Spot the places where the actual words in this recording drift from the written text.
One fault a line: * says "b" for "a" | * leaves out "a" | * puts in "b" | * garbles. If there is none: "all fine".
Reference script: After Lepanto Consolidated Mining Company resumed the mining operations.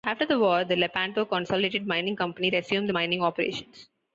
* puts in "the war the"